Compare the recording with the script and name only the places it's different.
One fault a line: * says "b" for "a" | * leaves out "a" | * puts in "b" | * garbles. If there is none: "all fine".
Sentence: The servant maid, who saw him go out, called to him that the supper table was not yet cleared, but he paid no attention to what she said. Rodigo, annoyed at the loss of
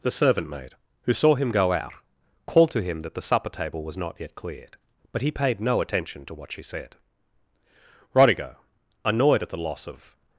all fine